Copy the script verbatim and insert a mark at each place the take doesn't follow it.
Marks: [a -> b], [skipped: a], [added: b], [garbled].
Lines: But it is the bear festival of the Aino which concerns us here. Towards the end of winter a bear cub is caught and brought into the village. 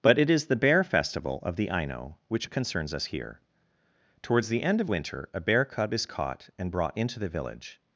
But it is the bear festival of the Aino which concerns us here. Towards the end of winter a bear cub is caught and brought into the village.